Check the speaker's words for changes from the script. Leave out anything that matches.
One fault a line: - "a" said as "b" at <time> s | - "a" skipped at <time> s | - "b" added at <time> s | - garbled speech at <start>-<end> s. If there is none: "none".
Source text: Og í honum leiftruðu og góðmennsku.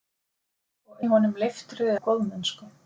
none